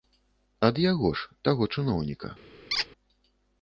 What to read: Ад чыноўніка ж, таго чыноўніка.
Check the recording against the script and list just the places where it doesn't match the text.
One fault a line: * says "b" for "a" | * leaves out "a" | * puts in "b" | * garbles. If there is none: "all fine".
* says "яго" for "чыноўніка"